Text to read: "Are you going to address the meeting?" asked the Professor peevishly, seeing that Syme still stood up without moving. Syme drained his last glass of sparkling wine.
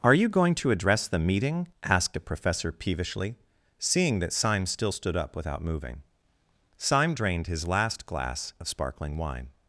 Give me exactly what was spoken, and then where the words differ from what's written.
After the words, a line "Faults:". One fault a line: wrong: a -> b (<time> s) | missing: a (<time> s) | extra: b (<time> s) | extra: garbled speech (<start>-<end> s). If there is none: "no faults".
"Are you going to address the meeting?" asked a Professor peevishly, seeing that Syme still stood up without moving. Syme drained his last glass of sparkling wine.
Faults:
wrong: the -> a (2.2 s)